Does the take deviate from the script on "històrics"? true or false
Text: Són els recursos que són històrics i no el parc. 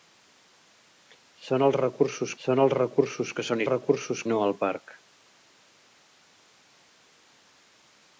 true